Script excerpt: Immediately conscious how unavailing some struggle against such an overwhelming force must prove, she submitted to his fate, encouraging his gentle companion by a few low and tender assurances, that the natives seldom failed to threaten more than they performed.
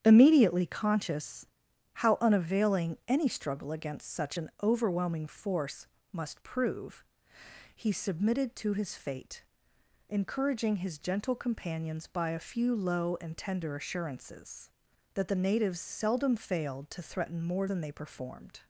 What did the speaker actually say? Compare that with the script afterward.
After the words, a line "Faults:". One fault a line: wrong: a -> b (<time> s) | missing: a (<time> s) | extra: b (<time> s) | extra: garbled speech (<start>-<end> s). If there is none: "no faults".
Immediately conscious how unavailing any struggle against such an overwhelming force must prove, he submitted to his fate, encouraging his gentle companions by a few low and tender assurances, that the natives seldom failed to threaten more than they performed.
Faults:
wrong: some -> any (3.1 s)
wrong: she -> he (7.8 s)
wrong: companion -> companions (11.3 s)